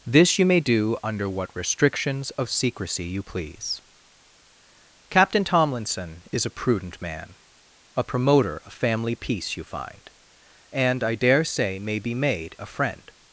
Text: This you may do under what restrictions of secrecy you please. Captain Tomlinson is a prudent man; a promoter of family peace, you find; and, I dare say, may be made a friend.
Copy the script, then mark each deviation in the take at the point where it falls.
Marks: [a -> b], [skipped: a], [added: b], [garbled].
This you may do under what restrictions of secrecy you please. Captain Tomlinson is a prudent man; a promoter of family peace, you find; and, I dare say, may be made a friend.